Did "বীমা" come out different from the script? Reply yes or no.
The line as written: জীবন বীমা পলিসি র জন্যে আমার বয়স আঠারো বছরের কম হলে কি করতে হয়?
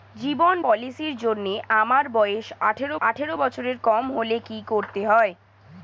yes